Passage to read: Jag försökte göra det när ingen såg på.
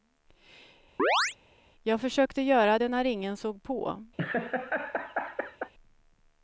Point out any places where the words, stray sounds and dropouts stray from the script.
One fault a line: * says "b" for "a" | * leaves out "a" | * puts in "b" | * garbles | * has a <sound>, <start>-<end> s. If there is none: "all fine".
* has a chirp, 1.0-1.4 s
* has a laugh, 4.2-5.7 s